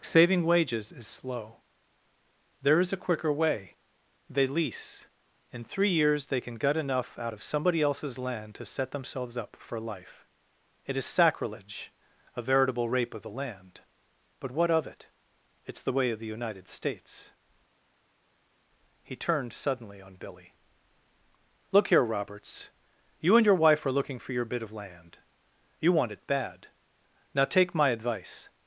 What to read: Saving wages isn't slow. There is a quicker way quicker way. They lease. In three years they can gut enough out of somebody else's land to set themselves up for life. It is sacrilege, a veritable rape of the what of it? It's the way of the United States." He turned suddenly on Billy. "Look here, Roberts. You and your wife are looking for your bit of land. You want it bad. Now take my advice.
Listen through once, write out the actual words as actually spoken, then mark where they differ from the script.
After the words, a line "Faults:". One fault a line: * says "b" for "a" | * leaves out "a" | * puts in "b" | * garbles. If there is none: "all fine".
Saving wages is slow. There is a quicker way. They lease. In three years they can gut enough out of somebody else's land to set themselves up for life. It is sacrilege, a veritable rape of the land; but what of it? It's the way of the United States." He turned suddenly on Billy. "Look here, Roberts. You and your wife are looking for your bit of land. You want it bad. Now take my advice.
Faults:
* says "is" for "isn't"
* leaves out "quicker way"
* puts in "land but"